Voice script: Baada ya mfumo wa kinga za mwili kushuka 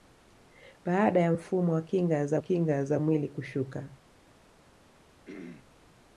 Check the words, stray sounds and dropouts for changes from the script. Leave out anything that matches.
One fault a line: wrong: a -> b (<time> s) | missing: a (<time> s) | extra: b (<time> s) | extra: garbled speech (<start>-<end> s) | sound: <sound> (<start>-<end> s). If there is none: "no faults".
extra: kinga za (2.4 s)
sound: throat clearing (5.3-5.7 s)